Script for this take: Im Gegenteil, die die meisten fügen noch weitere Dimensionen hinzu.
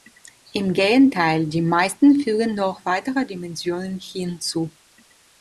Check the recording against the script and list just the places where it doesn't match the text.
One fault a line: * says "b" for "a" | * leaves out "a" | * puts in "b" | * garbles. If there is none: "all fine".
* leaves out "die"